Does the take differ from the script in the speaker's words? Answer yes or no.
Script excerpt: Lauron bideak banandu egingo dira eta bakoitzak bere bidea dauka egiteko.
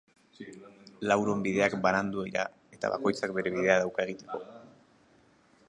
yes